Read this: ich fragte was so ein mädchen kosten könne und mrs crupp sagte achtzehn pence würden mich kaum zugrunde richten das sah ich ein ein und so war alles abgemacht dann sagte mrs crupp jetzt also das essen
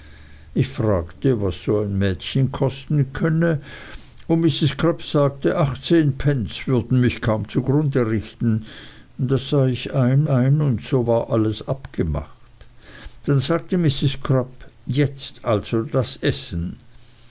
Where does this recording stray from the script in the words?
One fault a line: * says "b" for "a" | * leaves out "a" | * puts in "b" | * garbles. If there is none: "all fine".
all fine